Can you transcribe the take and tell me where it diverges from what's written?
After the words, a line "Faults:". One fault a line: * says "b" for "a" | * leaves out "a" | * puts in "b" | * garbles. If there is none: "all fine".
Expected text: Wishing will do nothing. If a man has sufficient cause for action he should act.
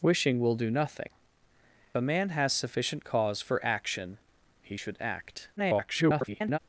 Wishing will do nothing. A man has sufficient cause for action he should act. [garbled]
Faults:
* leaves out "If"
* garbles